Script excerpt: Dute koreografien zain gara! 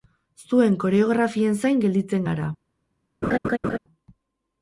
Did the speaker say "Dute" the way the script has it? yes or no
no